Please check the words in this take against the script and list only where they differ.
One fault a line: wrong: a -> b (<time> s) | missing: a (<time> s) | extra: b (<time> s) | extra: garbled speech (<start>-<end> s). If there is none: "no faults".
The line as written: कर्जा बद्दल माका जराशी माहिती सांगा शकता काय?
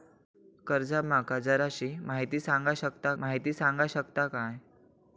missing: बद्दल (1.0 s)
extra: माहिती सांगा शकता (3.2 s)